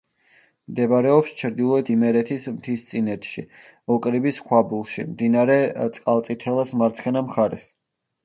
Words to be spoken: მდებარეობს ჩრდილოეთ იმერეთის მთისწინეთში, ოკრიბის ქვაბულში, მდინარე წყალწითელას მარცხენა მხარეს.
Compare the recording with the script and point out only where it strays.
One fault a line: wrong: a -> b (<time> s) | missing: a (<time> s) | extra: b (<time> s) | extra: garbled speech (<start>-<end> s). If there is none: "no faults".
no faults